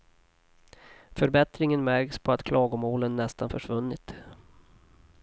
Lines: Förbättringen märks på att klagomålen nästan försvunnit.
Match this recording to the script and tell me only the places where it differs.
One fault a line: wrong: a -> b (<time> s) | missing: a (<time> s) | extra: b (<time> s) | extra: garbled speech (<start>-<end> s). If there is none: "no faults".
no faults